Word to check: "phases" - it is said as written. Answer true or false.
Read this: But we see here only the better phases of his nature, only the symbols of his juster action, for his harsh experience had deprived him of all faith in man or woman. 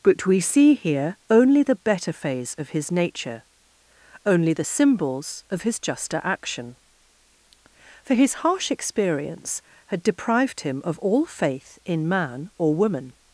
false